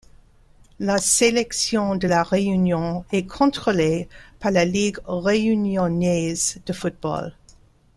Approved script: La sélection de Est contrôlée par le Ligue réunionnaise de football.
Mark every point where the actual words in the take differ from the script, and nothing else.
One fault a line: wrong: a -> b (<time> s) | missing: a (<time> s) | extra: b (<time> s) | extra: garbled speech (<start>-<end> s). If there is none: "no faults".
extra: La Réunion (2.0 s)
wrong: le -> la (4.5 s)